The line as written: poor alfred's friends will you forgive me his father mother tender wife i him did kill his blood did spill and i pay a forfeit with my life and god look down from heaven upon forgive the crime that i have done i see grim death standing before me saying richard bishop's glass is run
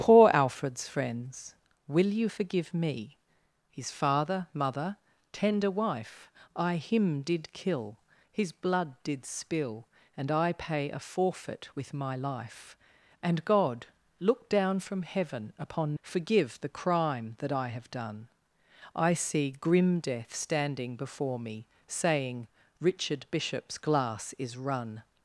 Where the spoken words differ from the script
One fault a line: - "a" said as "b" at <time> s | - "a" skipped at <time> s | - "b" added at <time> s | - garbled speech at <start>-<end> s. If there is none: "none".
none